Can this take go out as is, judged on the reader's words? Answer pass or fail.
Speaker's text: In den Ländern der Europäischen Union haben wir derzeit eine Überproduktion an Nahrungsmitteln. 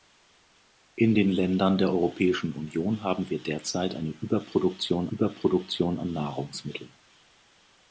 fail